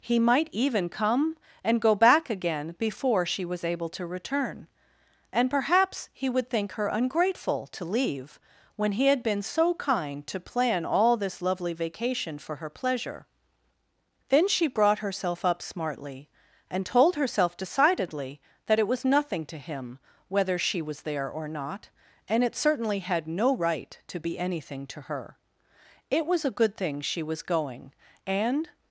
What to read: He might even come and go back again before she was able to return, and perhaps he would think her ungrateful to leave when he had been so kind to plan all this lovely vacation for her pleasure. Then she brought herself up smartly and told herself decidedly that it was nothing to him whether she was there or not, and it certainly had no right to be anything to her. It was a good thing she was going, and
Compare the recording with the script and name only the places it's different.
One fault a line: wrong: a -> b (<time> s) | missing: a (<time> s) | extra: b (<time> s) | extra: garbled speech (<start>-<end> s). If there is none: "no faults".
no faults